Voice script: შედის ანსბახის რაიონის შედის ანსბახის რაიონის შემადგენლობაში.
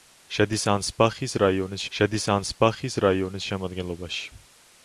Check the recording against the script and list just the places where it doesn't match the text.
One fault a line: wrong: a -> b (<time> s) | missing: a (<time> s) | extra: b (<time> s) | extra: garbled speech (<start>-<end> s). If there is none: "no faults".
no faults